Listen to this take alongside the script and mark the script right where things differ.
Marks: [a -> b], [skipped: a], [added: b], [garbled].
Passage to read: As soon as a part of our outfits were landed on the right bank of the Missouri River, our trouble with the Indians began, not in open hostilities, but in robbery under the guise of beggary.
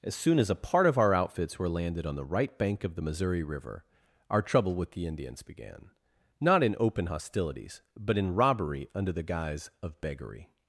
As soon as a part of our outfits were landed on the right bank of the Missouri River, our trouble with the Indians began, not in open hostilities, but in robbery under the guise of beggary.